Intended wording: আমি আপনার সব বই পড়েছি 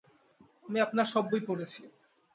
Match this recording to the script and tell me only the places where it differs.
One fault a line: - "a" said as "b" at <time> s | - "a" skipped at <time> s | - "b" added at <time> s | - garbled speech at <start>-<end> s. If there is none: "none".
none